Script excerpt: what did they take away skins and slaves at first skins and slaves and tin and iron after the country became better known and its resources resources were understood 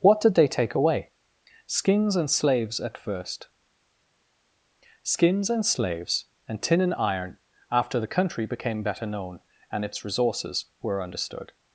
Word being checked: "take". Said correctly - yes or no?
yes